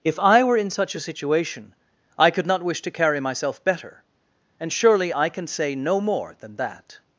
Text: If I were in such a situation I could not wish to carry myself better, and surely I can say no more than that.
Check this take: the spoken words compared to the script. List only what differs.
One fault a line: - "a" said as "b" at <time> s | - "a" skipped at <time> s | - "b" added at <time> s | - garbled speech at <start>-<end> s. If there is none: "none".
none